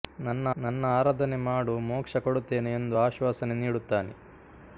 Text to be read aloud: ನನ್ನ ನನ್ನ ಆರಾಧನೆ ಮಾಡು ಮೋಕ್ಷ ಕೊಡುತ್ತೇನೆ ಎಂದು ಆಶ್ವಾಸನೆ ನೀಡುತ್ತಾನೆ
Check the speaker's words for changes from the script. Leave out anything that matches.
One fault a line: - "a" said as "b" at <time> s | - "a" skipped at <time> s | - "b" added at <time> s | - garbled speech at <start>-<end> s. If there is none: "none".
none